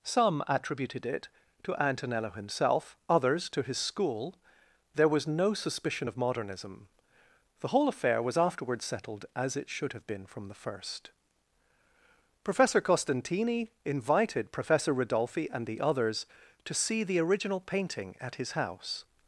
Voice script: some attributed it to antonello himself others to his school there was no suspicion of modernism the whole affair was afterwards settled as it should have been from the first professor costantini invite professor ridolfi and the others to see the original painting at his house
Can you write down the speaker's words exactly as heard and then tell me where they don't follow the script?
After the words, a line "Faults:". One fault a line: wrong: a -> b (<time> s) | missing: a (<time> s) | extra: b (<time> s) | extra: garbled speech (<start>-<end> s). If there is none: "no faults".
some attributed it to antonello himself others to his school there was no suspicion of modernism the whole affair was afterwards settled as it should have been from the first professor costantini invited professor ridolfi and the others to see the original painting at his house
Faults:
wrong: invite -> invited (13.8 s)